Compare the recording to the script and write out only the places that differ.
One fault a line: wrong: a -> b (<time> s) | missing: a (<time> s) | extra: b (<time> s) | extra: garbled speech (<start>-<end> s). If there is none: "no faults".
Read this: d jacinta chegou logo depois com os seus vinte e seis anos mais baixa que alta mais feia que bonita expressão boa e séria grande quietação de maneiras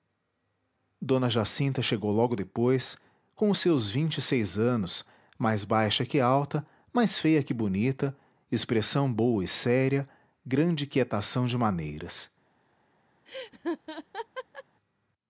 no faults